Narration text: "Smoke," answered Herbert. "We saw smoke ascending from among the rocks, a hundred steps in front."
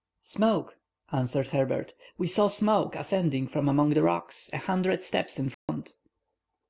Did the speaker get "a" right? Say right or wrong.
right